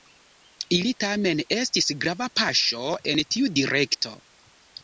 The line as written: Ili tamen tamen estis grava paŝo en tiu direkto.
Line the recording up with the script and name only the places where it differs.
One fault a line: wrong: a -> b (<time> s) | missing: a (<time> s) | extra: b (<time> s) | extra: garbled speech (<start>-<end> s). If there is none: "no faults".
missing: tamen (1.4 s)